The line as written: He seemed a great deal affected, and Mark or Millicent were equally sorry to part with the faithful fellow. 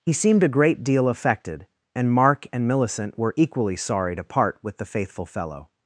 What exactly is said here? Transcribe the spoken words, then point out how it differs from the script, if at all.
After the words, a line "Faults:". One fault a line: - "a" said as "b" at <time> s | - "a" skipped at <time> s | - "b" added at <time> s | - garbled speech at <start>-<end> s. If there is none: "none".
He seemed a great deal affected, and Mark and Millicent were equally sorry to part with the faithful fellow.
Faults:
- "or" said as "and" at 2.5 s